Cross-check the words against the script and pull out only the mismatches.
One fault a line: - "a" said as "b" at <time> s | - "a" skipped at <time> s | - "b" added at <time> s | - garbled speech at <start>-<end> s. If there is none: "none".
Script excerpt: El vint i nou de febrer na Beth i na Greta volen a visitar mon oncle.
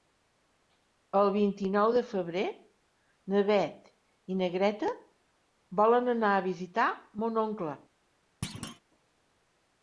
- "anar" added at 6.2 s